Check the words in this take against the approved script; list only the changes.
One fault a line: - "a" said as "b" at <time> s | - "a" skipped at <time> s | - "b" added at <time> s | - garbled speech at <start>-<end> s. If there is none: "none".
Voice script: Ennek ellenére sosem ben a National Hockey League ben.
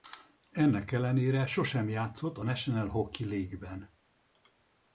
- "ben" said as "játszott" at 1.9 s